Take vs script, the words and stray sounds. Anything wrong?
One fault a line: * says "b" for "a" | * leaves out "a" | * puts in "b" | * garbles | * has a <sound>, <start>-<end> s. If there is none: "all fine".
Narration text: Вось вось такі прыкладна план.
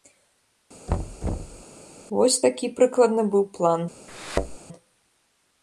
* has a thud, 0.9-1.6 s
* leaves out "вось"
* puts in "быў"
* has a thud, 4.1-4.6 s